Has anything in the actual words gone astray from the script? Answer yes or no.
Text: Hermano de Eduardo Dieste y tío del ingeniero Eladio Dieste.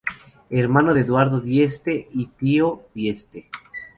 yes